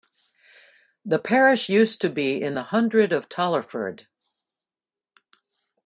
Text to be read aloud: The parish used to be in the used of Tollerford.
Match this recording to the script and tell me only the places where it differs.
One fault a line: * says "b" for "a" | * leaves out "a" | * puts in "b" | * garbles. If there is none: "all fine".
* says "hundred" for "used"